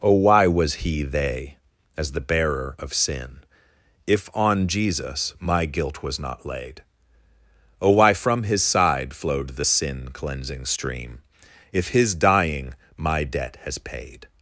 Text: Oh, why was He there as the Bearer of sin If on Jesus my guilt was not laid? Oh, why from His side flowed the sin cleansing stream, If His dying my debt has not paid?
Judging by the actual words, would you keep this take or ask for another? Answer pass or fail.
fail